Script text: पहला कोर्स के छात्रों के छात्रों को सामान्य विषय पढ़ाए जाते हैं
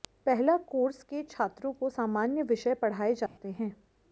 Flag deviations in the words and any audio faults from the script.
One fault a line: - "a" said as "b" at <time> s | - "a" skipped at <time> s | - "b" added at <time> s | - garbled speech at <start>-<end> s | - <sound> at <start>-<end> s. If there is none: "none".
- "के छात्रों" skipped at 1.7 s
- dropout at 3.3-3.4 s